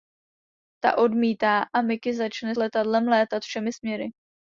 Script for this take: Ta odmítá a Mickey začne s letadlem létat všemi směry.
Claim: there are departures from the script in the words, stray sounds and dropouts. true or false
true